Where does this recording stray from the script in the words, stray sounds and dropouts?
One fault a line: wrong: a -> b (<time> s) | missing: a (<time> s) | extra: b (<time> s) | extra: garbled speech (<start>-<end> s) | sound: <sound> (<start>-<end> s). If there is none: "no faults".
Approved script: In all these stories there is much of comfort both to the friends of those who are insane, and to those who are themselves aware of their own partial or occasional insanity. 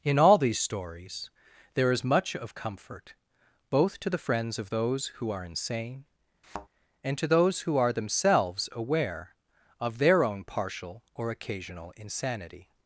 sound: thud (6.4-6.7 s)